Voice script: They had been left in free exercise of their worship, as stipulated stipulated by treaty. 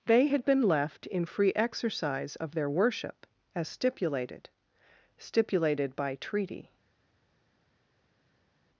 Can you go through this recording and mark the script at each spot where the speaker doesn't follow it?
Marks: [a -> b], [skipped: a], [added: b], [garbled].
They had been left in free exercise of their worship, as stipulated stipulated by treaty.